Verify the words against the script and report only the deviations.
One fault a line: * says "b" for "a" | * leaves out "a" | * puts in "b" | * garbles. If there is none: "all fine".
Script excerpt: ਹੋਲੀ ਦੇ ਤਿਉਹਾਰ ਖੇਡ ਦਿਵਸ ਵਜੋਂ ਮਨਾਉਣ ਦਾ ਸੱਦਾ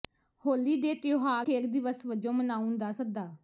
all fine